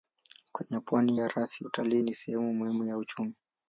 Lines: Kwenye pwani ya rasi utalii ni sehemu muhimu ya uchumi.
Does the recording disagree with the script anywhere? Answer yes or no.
no